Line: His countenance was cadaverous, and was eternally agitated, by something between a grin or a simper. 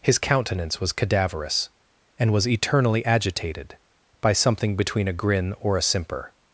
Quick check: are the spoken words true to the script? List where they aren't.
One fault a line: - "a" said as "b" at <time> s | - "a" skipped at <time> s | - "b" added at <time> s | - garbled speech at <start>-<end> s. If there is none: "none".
none